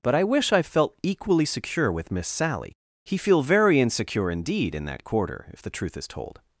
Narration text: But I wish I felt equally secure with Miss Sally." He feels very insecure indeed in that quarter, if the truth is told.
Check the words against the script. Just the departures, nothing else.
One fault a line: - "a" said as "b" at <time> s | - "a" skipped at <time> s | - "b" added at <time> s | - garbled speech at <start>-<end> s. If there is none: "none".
- "feels" said as "feel" at 3.2 s